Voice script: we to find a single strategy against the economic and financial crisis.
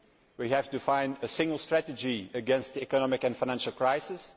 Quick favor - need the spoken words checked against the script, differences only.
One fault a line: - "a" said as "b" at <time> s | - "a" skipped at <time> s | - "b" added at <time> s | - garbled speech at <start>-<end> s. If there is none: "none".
- "have" added at 0.5 s